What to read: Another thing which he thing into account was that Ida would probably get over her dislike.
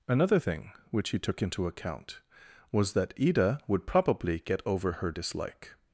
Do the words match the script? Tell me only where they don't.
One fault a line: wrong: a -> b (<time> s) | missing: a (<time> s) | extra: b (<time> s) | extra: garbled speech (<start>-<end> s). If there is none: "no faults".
wrong: thing -> took (1.2 s)